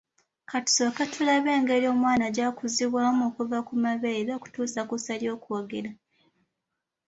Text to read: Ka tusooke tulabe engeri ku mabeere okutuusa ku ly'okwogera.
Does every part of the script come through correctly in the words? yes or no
no